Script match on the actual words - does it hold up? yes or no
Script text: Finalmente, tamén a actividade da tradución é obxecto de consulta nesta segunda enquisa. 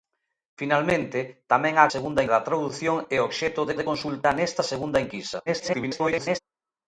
no